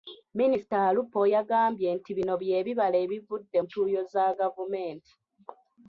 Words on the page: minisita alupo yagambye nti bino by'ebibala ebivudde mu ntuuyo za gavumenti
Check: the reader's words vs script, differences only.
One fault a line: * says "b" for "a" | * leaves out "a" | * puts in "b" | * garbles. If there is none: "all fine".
* leaves out "mu"